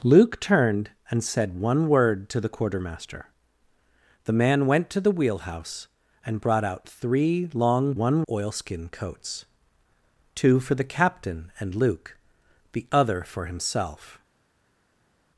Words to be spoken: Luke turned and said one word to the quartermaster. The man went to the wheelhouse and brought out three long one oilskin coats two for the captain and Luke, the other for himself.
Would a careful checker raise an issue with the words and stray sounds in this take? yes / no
no